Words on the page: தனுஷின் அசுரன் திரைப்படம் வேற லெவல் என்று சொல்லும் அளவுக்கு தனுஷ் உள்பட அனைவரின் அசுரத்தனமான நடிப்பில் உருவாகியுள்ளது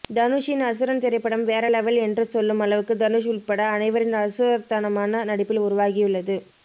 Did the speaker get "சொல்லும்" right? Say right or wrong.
right